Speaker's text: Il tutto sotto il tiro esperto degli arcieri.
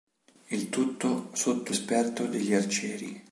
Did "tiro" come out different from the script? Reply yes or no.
yes